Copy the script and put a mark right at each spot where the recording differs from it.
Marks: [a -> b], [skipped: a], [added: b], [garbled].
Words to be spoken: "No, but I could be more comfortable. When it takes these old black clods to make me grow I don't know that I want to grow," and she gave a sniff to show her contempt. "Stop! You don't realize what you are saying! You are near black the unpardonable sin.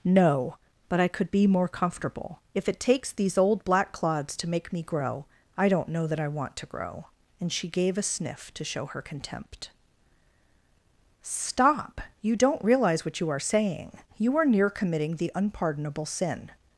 "No, but I could be more comfortable. [When -> If] it takes these old black clods to make me grow I don't know that I want to grow," and she gave a sniff to show her contempt. "Stop! You don't realize what you are saying! You are near [black -> committing] the unpardonable sin.